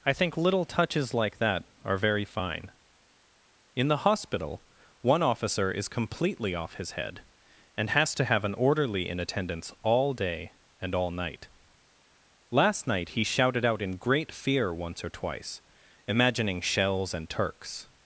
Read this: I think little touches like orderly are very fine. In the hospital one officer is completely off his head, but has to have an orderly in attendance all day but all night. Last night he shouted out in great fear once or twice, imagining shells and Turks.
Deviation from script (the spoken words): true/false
true